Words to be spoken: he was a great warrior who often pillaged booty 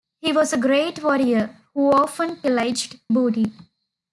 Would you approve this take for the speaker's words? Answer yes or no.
yes